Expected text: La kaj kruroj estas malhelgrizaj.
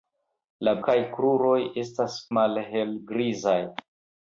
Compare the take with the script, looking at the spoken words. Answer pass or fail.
pass